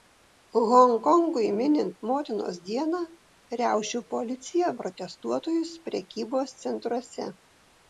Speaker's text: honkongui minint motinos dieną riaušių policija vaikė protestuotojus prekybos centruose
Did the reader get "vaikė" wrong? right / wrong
wrong